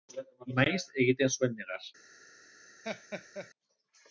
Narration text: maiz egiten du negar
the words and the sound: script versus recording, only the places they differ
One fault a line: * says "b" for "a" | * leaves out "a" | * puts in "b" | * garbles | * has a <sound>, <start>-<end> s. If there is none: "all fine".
* says "zuen" for "du"
* has a laugh, 2.8-3.5 s